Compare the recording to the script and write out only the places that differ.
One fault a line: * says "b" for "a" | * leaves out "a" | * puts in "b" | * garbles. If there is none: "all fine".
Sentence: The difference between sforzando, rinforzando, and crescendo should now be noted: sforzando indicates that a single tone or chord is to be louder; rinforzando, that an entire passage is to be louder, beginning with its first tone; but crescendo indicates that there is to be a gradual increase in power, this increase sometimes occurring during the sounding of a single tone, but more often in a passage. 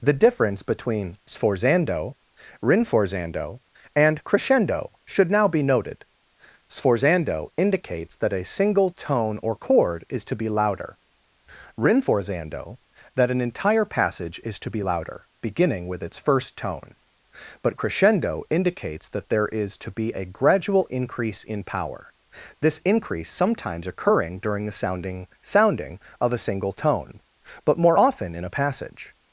* puts in "sounding"